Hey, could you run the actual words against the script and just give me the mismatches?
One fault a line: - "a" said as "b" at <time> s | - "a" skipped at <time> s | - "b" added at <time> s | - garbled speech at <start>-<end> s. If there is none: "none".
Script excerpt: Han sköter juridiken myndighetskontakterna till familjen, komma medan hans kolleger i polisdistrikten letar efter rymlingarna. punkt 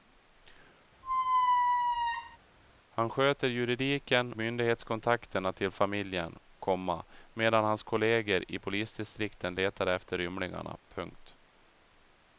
none